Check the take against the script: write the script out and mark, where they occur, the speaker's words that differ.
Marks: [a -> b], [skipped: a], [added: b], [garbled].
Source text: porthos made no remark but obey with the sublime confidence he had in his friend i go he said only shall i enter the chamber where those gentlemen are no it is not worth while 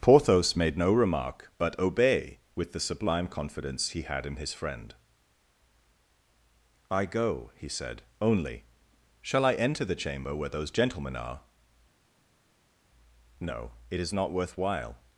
porthos made no remark but obey with the sublime confidence he had in his friend i go he said only shall i enter the chamber where those gentlemen are no it is not worth while